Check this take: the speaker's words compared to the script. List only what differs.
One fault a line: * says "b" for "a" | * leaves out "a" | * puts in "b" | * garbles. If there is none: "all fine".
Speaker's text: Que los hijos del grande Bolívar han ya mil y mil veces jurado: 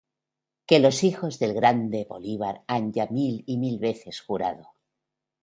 all fine